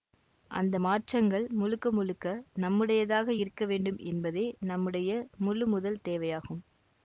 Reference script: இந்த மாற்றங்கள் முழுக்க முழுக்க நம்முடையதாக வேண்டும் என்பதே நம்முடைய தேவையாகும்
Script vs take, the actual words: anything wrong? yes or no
yes